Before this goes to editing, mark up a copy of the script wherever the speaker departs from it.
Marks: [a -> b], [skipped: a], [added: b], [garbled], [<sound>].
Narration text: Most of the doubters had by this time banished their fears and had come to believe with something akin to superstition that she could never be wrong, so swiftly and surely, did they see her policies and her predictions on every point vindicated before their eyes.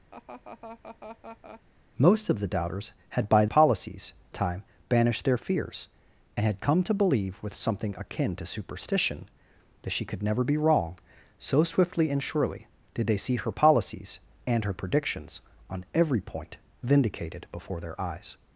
[laugh] Most of the doubters had by [this -> policies] time banished their fears and had come to believe with something akin to superstition that she could never be wrong, so swiftly and surely, did they see her policies and her predictions on every point vindicated before their eyes.